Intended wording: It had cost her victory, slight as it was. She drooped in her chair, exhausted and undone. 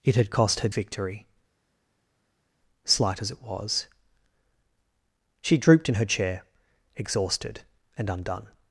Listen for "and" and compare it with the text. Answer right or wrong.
right